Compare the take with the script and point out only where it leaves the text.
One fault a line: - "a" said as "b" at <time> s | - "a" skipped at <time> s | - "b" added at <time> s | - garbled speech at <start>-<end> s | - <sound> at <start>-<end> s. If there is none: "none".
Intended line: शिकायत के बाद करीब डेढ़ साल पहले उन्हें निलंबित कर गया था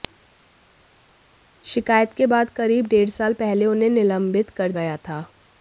none